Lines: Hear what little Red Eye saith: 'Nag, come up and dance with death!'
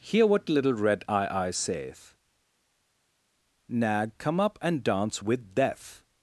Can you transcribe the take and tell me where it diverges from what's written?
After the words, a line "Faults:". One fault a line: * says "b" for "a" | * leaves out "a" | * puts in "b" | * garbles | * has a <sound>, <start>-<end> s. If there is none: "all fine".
Hear what little Red Eye Eye saith: 'Nag, come up and dance with death!'
Faults:
* puts in "Eye"